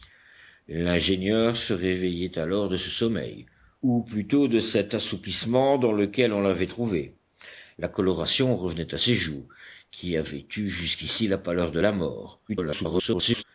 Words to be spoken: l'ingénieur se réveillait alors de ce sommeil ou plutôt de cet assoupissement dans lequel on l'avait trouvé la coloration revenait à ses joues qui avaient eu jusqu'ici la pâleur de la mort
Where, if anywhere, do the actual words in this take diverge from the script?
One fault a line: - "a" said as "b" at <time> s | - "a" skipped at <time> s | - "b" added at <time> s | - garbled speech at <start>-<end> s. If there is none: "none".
- garbled speech at 12.5-13.4 s